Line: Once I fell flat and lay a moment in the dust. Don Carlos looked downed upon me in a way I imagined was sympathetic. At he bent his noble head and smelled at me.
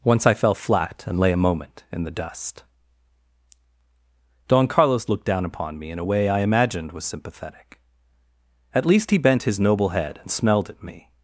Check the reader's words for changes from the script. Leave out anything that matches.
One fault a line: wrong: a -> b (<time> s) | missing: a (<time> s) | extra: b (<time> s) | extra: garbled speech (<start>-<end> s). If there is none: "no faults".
wrong: downed -> down (5.2 s)
extra: least (8.9 s)